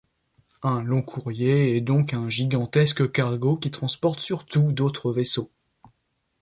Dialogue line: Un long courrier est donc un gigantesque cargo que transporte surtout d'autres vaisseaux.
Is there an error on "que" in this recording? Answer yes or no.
yes